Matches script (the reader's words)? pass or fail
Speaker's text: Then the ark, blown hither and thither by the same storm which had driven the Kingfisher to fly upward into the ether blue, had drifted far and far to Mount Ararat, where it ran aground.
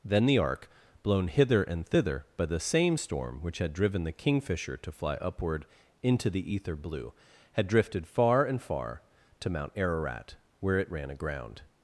pass